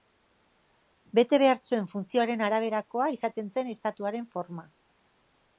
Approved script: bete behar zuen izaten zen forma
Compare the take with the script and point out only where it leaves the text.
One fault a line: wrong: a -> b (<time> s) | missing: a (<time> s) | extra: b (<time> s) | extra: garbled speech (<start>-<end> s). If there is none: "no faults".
extra: funtzioaren araberakoa (1.9 s)
extra: estatuaren (3.8 s)